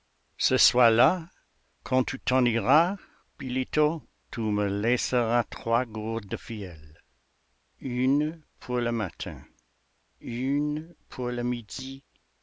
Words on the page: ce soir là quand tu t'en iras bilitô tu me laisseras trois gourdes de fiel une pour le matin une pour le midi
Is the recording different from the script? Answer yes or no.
no